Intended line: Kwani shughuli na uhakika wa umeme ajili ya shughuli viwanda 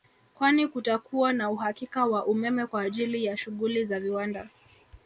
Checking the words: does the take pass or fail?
fail